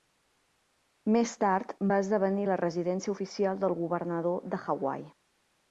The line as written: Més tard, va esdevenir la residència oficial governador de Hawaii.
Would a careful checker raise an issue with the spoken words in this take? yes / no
yes